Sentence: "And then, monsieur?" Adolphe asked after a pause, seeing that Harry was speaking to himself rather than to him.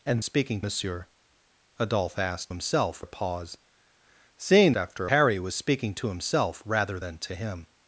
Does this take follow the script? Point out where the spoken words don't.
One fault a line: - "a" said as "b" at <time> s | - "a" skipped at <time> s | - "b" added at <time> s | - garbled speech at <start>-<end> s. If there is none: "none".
- "then" said as "speaking" at 0.2 s
- "after" said as "himself" at 2.5 s
- "that" said as "after" at 4.8 s